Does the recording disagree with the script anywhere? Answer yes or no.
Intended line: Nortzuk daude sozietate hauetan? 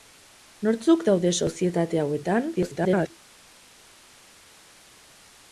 yes